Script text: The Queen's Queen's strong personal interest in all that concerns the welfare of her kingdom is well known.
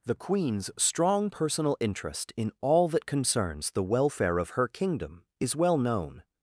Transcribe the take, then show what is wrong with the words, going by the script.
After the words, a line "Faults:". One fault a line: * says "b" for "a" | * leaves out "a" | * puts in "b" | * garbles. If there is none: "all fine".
The Queen's strong personal interest in all that concerns the welfare of her kingdom is well known.
Faults:
* leaves out "Queen's"